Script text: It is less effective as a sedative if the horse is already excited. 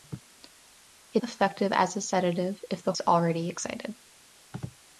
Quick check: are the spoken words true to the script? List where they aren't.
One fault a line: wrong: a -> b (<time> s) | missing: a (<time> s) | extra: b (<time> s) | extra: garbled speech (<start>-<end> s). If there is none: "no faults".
missing: is less (1.2 s)
missing: horse (2.9 s)